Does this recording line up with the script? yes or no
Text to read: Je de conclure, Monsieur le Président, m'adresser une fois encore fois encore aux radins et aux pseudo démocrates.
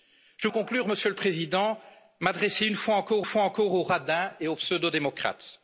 yes